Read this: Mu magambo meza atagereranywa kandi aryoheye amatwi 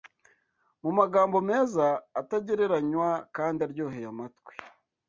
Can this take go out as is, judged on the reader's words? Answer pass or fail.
pass